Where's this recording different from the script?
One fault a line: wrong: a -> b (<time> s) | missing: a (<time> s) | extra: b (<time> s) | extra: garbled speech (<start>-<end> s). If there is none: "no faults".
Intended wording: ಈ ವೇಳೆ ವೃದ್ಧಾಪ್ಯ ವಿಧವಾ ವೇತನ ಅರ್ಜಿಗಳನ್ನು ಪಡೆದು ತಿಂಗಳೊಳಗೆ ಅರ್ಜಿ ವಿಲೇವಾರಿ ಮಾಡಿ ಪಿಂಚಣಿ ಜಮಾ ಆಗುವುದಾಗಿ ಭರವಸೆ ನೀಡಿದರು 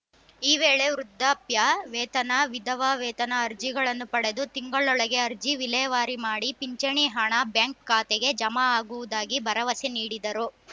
extra: ವೇತನ (1.9 s)
extra: ಹಣ ಬ್ಯಾಂಕ್ ಖಾತೆಗೆ (7.2 s)